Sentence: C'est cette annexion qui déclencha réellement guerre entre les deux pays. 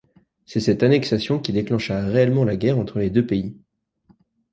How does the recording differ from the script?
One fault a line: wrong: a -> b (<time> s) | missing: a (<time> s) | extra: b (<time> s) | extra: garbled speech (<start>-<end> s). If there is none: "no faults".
extra: la (2.4 s)